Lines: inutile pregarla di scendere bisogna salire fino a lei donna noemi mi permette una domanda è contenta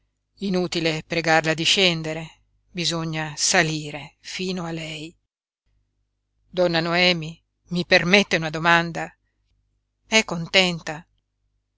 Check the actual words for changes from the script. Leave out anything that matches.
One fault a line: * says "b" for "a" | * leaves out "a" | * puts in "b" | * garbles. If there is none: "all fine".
all fine